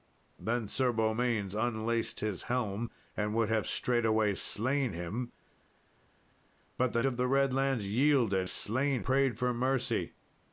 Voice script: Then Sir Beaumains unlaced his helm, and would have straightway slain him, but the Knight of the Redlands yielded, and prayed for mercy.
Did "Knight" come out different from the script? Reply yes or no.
yes